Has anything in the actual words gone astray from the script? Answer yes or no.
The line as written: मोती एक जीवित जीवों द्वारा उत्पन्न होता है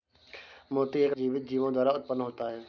no